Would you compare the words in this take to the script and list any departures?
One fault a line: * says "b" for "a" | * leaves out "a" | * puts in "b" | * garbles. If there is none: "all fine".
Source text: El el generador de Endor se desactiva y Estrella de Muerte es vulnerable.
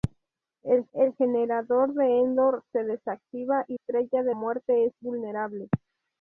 all fine